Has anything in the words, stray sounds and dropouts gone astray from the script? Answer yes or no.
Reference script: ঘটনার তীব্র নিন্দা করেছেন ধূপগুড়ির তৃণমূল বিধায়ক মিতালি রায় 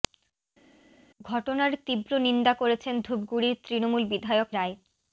yes